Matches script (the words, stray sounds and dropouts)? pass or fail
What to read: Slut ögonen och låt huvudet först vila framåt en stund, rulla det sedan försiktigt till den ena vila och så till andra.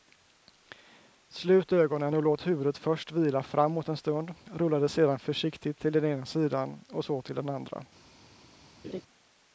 fail